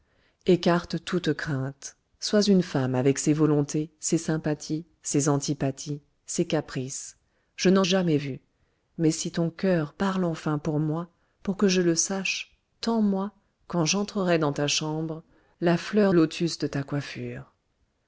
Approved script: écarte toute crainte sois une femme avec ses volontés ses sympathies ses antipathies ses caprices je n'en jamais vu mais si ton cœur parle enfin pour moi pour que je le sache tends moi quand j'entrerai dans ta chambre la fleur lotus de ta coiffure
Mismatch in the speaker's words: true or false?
false